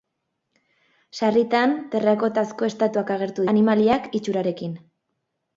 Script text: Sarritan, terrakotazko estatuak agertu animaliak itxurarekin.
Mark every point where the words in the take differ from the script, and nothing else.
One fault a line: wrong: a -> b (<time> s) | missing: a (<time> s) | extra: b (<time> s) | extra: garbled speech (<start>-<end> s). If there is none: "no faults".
no faults